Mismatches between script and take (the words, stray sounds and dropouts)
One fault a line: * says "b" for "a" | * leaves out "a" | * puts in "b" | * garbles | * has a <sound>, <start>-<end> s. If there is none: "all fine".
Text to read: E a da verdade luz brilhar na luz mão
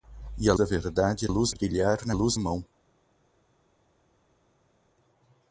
all fine